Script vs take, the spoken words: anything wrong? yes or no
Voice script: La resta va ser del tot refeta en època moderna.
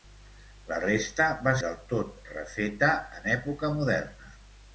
yes